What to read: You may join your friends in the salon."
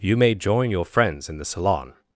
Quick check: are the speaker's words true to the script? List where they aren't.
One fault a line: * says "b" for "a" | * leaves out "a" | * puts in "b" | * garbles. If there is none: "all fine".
all fine